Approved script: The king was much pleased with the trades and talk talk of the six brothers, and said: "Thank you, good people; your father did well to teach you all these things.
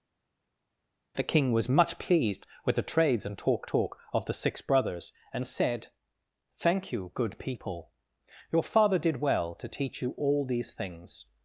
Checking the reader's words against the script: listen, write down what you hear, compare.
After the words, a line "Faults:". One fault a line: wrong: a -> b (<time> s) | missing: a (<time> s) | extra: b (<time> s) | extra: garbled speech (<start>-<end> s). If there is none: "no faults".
The king was much pleased with the trades and talk talk of the six brothers, and said: "Thank you, good people; your father did well to teach you all these things.
Faults:
no faults